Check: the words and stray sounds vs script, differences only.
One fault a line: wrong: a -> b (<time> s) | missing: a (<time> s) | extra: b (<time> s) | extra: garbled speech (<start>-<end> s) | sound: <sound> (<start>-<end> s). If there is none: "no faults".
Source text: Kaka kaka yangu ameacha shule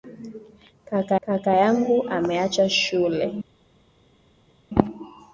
no faults